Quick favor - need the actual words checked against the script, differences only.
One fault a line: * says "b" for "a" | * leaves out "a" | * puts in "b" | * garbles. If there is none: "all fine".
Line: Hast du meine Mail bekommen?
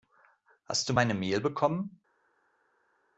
all fine